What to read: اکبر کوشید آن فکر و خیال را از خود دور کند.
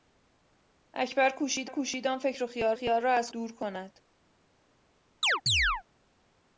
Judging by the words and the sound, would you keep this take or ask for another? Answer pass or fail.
fail